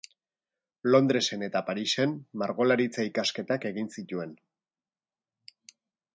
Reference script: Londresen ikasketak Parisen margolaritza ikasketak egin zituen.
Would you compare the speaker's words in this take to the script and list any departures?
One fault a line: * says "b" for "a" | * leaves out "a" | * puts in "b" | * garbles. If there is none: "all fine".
* says "eta" for "ikasketak"